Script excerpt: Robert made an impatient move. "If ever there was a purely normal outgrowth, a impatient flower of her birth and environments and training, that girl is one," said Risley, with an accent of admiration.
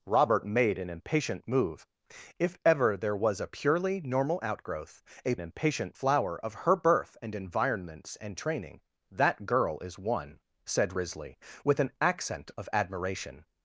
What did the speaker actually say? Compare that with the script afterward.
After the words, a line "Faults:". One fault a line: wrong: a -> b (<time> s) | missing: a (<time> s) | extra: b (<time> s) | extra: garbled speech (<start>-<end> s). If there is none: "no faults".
Robert made an impatient move. "If ever there was a purely normal outgrowth, a impatient flower of her birth and environments and training, that girl is one," said Risley, with an accent of admiration.
Faults:
no faults